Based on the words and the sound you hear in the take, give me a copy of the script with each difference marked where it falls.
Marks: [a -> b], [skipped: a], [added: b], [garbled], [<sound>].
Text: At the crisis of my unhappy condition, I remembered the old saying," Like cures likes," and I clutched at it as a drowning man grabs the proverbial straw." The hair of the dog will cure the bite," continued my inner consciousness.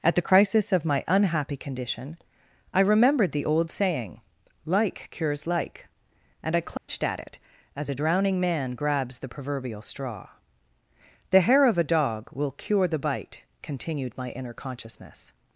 At the crisis of my unhappy condition, I remembered the old saying," Like cures [likes," -> like] and I clutched [dropout] at it as a drowning man grabs the proverbial straw." The hair of [the -> a] dog will cure the bite," continued my inner consciousness.